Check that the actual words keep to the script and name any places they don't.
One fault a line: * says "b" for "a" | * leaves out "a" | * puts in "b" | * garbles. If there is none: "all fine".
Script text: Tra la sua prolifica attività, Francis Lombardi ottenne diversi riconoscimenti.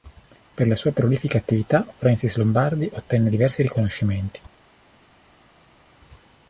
* says "Per" for "Tra"